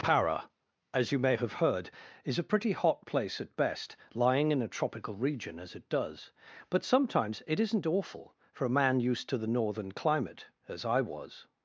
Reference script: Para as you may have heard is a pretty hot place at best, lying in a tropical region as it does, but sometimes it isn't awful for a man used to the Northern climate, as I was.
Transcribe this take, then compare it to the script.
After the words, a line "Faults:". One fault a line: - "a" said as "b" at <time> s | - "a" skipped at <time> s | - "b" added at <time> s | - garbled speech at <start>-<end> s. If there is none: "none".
Para as you may have heard is a pretty hot place at best, lying in a tropical region as it does, but sometimes it isn't awful for a man used to the Northern climate, as I was.
Faults:
none